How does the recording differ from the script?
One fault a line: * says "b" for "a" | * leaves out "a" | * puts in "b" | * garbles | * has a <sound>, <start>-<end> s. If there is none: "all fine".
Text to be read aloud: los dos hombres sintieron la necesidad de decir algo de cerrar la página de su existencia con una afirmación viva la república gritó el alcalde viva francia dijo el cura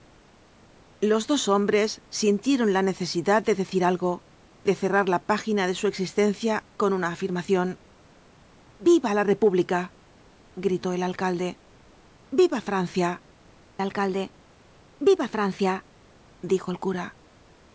* puts in "alcalde viva francia"